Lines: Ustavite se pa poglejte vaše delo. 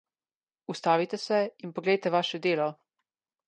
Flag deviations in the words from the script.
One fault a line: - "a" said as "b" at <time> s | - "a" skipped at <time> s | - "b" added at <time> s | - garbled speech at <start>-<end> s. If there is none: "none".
- "pa" said as "in" at 1.6 s